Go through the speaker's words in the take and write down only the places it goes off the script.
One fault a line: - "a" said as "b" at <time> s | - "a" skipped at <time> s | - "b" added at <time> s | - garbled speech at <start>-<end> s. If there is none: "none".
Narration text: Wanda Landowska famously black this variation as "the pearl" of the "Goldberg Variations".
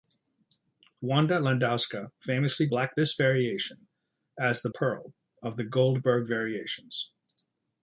none